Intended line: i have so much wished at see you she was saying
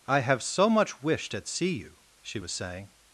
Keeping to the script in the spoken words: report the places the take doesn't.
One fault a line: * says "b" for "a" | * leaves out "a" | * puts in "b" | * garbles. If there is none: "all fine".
all fine